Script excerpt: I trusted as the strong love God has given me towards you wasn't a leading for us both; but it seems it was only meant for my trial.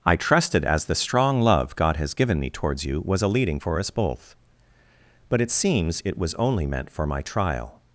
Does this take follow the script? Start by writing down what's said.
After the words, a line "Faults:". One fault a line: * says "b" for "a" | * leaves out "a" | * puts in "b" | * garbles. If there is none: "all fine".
I trusted as the strong love God has given me towards you was a leading for us both; but it seems it was only meant for my trial.
Faults:
* says "was" for "wasn't"